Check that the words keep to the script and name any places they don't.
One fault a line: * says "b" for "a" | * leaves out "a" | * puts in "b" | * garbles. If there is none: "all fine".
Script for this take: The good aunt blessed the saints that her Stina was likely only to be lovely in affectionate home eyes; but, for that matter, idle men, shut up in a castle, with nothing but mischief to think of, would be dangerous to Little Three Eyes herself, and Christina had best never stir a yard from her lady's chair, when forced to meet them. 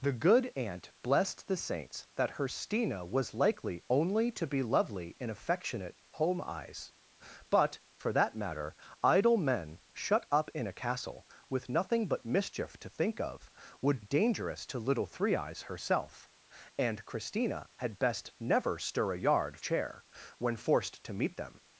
* leaves out "be"
* leaves out "from her lady's"